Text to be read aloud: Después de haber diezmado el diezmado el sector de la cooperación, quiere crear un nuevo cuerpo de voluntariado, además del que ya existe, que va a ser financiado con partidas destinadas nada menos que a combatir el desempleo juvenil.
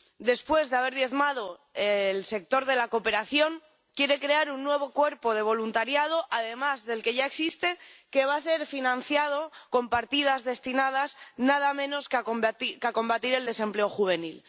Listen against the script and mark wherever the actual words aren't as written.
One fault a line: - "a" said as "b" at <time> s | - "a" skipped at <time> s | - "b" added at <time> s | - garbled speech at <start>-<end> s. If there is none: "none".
- "diezmado el" skipped at 2.2 s